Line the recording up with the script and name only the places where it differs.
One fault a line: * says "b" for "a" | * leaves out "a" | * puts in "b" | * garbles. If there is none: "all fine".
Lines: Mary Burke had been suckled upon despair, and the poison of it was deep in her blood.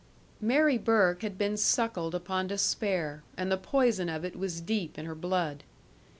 all fine